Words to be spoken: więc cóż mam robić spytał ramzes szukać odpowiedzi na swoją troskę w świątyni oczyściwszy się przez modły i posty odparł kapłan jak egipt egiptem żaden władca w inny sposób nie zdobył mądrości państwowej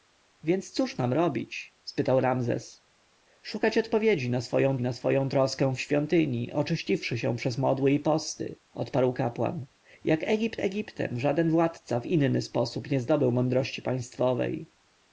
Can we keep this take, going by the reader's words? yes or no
no